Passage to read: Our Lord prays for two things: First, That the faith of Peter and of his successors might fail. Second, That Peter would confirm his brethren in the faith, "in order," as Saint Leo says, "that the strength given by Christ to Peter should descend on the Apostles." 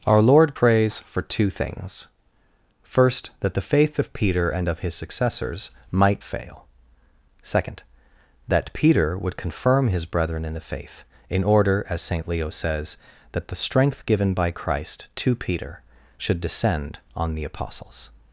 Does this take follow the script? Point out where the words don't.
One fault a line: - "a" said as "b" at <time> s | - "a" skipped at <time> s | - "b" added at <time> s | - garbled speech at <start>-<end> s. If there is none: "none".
none